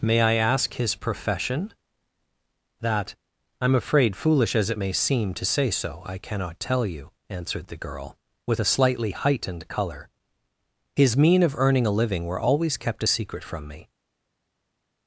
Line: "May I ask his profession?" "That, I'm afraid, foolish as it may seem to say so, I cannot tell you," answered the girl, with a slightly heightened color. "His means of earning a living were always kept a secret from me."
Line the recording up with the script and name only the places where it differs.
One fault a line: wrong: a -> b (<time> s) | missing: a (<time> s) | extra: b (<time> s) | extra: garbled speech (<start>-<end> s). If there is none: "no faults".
wrong: means -> mean (11.2 s)